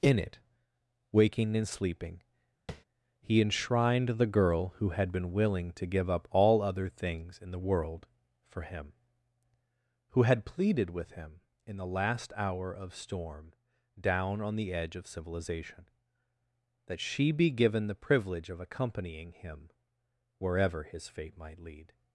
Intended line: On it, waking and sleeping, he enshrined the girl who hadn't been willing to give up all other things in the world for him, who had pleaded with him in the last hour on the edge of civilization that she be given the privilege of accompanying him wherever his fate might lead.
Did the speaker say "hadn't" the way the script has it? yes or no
no